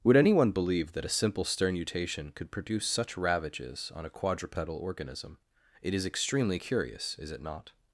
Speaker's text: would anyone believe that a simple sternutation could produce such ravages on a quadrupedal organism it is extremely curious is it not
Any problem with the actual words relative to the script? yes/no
no